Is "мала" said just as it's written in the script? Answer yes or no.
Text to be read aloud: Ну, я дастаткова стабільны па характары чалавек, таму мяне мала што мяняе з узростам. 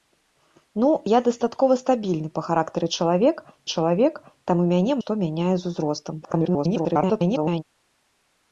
no